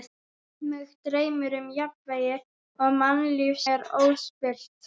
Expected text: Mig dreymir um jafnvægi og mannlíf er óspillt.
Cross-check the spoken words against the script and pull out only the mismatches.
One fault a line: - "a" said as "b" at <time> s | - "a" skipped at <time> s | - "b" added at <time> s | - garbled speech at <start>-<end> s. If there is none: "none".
none